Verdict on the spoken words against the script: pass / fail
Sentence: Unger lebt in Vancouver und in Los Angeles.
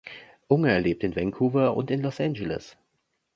pass